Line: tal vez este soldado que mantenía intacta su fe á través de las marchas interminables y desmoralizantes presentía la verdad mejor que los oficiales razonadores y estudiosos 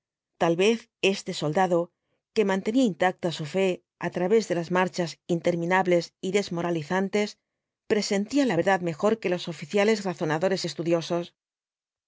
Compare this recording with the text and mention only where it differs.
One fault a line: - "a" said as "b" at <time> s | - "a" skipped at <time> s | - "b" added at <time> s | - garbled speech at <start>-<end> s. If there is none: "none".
none